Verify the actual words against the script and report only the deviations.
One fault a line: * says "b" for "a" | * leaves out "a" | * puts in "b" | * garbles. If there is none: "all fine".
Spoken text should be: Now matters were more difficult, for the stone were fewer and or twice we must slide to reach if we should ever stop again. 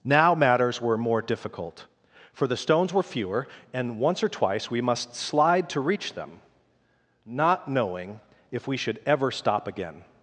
* says "stones" for "stone"
* puts in "once"
* puts in "them not knowing"